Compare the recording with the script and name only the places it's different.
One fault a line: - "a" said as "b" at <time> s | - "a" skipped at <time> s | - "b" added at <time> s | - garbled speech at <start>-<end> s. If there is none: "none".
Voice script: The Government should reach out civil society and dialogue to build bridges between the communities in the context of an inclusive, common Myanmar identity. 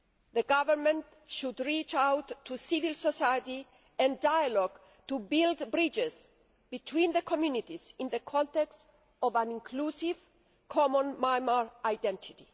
- "to" added at 2.5 s